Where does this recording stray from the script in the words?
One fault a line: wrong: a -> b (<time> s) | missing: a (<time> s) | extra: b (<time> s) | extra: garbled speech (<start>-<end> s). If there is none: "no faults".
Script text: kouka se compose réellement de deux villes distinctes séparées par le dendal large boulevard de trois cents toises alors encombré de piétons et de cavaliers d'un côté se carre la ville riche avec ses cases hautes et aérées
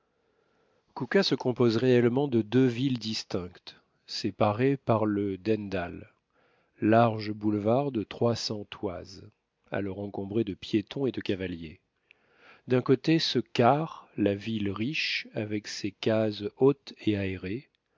no faults